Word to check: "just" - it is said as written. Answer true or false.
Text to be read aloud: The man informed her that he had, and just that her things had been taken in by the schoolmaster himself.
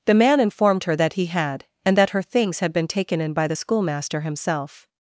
false